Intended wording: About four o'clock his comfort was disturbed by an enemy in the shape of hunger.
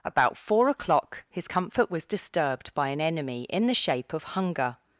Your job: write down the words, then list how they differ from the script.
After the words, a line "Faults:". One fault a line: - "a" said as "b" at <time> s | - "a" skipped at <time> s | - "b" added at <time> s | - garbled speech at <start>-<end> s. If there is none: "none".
About four o'clock his comfort was disturbed by an enemy in the shape of hunger.
Faults:
none